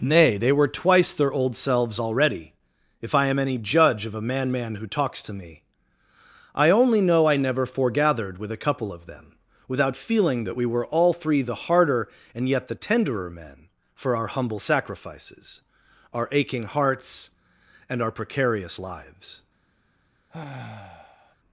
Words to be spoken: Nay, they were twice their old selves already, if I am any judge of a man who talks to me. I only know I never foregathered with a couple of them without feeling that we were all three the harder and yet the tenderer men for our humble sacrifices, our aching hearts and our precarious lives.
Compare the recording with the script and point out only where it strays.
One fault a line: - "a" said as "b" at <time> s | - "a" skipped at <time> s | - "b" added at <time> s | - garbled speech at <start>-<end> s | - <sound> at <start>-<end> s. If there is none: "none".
- "man" added at 4.5 s
- sigh at 20.3-21.4 s